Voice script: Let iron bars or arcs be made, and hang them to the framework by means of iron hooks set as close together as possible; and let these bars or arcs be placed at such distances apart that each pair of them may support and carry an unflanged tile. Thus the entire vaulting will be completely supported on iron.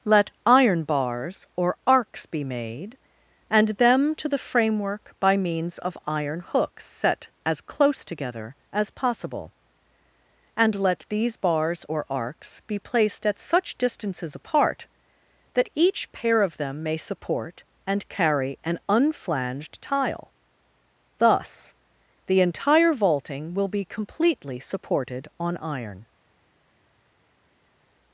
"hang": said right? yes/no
no